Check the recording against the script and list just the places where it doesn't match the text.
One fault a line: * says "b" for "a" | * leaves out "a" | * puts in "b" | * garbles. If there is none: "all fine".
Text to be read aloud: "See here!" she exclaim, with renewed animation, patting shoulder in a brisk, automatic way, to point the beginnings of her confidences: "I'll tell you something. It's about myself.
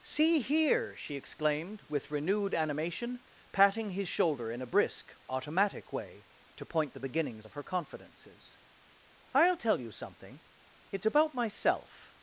* says "exclaimed" for "exclaim"
* puts in "his"